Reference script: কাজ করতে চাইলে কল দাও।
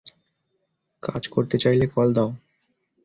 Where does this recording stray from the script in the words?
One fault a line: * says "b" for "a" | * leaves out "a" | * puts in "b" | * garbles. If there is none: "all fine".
all fine